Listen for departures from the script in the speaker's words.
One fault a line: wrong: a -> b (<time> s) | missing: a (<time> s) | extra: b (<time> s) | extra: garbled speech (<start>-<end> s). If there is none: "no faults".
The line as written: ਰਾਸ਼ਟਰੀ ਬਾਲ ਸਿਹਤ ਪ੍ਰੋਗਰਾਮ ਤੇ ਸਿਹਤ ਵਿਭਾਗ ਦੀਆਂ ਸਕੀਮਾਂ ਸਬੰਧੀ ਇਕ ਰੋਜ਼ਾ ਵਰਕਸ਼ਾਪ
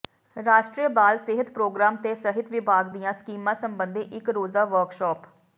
no faults